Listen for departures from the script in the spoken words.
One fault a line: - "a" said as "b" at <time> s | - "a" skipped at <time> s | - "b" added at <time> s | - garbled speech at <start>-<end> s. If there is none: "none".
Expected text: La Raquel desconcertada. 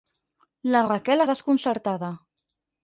none